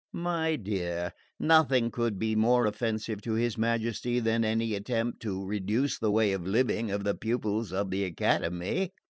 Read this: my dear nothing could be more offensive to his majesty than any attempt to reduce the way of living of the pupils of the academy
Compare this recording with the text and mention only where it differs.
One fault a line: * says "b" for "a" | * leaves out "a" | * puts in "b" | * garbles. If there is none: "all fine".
all fine